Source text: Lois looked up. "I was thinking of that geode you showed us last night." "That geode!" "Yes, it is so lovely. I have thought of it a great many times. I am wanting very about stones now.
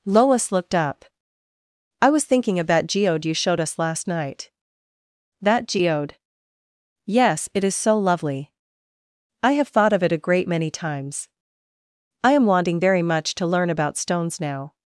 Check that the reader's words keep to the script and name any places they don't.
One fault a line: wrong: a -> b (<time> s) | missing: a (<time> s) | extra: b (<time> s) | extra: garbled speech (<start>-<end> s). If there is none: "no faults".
extra: much to learn (13.0 s)